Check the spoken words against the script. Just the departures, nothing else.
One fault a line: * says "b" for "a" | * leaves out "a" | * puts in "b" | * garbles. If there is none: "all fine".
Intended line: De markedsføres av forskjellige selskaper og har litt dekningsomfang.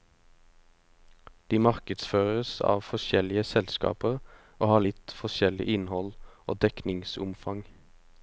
* puts in "forskjellig innhold og"